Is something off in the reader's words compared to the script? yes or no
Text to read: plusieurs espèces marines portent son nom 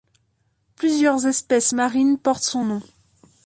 no